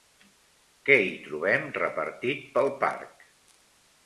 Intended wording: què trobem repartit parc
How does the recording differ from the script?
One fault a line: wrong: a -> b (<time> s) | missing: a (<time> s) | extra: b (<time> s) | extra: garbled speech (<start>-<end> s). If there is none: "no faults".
extra: hi (1.0 s)
extra: pel (2.6 s)